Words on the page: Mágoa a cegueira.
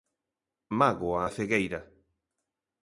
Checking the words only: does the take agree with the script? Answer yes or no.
yes